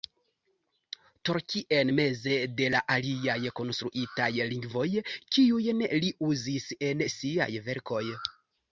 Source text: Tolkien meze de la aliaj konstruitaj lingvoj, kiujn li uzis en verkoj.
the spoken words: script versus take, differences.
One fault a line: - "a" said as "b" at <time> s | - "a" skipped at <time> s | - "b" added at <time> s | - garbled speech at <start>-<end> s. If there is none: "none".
- "siaj" added at 7.2 s